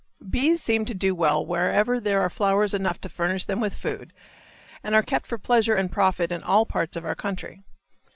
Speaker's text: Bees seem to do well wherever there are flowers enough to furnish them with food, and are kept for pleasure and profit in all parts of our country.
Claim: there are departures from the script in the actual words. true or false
false